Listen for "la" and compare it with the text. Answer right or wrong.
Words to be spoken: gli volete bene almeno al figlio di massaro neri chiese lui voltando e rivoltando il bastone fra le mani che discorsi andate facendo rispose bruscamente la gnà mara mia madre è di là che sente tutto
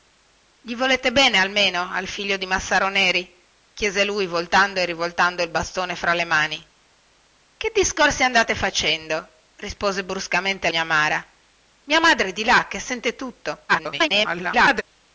wrong